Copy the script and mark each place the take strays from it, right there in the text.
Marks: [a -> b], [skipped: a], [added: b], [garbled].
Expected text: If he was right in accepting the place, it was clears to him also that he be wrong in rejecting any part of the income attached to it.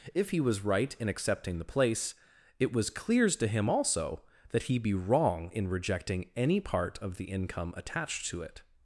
If he was right in accepting the place, it was clears to him also that he be wrong in rejecting any part of the income attached to it.